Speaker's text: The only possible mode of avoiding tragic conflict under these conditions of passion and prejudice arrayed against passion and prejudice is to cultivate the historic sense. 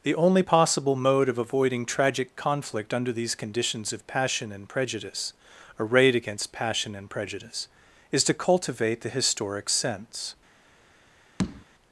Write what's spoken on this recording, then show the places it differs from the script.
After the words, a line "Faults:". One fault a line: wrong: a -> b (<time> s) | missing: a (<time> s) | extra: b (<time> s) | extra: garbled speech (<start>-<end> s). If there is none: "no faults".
The only possible mode of avoiding tragic conflict under these conditions of passion and prejudice arrayed against passion and prejudice is to cultivate the historic sense.
Faults:
no faults